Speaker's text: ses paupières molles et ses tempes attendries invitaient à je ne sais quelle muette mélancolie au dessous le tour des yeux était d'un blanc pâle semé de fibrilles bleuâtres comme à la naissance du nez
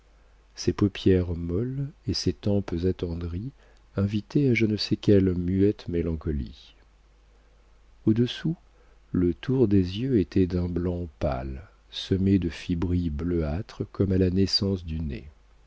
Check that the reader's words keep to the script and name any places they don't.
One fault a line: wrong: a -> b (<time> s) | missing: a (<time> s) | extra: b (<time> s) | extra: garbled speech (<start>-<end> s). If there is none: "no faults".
no faults